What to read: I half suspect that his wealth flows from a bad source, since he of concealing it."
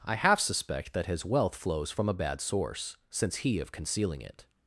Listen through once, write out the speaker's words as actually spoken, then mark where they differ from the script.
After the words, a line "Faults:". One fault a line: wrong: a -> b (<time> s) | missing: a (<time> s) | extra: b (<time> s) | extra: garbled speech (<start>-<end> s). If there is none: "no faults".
I half suspect that his wealth flows from a bad source, since he of concealing it."
Faults:
no faults